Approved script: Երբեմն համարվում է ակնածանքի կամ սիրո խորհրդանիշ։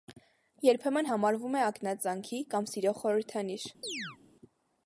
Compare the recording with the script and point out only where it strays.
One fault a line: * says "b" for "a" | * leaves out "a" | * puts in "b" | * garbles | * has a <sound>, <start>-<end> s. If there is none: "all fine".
* has a chirp, 3.8-4.2 s